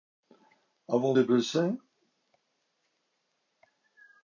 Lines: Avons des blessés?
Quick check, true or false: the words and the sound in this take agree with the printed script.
true